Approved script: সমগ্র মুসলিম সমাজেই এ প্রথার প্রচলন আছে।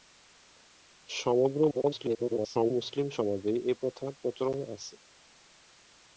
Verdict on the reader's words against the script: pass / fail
fail